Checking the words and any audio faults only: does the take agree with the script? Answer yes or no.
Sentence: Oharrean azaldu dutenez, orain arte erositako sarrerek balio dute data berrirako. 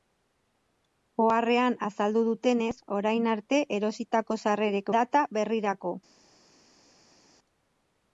no